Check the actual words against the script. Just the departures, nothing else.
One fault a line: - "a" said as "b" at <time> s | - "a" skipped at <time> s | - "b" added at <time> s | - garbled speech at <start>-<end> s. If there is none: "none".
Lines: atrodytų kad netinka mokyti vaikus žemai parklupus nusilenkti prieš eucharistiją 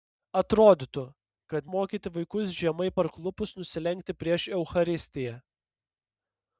- "netinka" skipped at 1.7 s